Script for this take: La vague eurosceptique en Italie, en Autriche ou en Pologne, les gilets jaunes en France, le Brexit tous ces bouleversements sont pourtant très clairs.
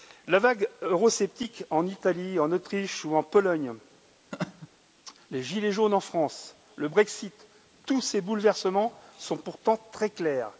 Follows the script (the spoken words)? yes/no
yes